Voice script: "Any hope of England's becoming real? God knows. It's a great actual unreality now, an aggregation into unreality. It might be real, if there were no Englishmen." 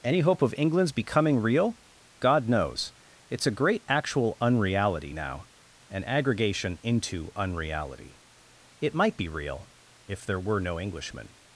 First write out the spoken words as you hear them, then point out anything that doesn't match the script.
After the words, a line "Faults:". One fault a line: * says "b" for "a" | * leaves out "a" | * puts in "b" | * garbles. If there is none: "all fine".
"Any hope of England's becoming real? God knows. It's a great actual unreality now, an aggregation into unreality. It might be real, if there were no Englishmen."
Faults:
all fine